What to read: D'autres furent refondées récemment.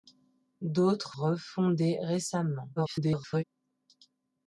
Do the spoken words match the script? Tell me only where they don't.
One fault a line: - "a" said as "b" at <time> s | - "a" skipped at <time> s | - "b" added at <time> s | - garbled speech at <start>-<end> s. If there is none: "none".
- "furent" skipped at 1.1 s
- garbled speech at 2.8-3.4 s